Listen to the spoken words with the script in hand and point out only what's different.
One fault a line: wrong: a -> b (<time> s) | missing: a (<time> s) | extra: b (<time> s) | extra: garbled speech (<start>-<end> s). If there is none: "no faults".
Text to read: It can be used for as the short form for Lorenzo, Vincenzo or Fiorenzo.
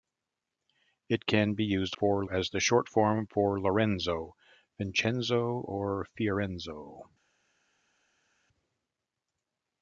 no faults